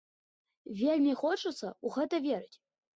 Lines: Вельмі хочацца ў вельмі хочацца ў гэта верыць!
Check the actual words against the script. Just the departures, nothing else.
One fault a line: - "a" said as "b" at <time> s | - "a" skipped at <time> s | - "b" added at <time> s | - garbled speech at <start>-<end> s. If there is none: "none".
- "вельмі хочацца ў" skipped at 1.9 s